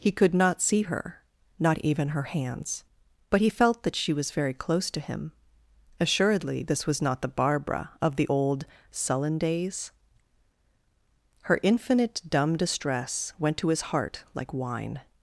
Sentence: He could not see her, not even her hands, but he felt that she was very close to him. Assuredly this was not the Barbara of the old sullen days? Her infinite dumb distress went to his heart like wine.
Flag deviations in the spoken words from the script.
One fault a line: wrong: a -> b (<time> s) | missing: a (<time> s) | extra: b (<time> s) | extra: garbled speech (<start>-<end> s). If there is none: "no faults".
no faults